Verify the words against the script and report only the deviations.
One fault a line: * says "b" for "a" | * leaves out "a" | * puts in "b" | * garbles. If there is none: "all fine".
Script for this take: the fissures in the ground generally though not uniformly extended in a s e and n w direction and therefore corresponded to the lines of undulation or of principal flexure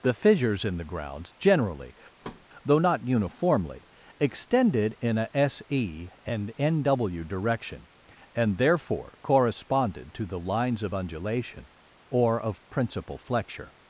* says "grounds" for "ground"